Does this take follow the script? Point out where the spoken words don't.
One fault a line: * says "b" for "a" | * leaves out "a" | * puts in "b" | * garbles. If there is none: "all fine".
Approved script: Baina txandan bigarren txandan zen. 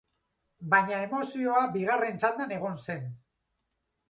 * says "emozioa" for "txandan"
* puts in "egon"